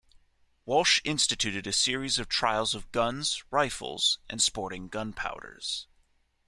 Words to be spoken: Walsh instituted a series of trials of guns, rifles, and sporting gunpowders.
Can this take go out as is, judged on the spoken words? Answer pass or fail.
pass